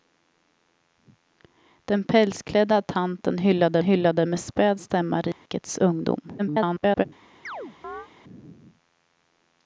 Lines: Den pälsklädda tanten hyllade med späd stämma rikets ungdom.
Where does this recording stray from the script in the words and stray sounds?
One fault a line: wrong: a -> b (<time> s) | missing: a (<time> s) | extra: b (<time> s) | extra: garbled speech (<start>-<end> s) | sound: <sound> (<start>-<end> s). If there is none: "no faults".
extra: hyllade (3.8 s)
sound: dropout (5.3-5.5 s)
extra: garbled speech (6.4-7.0 s)
sound: chirp (7.4-8.1 s)